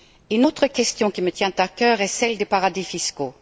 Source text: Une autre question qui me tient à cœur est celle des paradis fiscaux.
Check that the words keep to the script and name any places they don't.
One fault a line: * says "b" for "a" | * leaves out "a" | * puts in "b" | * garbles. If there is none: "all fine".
all fine